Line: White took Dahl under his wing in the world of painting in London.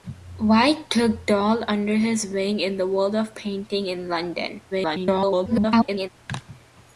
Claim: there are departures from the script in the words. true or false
true